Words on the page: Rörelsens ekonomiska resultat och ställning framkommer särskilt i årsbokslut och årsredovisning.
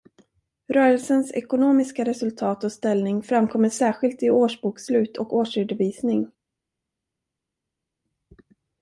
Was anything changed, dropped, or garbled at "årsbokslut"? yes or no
no